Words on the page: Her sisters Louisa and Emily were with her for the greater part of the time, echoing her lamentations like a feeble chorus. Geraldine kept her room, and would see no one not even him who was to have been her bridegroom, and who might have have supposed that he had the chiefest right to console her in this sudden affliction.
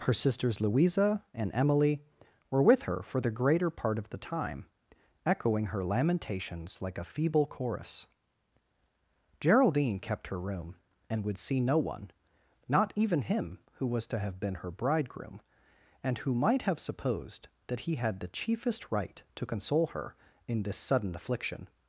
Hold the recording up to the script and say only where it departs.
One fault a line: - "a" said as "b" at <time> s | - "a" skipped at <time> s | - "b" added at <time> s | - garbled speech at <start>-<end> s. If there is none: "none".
- "have" skipped at 16.8 s